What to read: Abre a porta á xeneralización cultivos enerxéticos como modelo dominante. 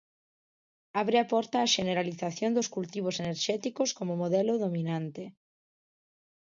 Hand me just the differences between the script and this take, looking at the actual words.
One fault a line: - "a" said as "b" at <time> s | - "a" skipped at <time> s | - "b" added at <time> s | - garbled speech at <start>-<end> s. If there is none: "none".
- "dos" added at 2.6 s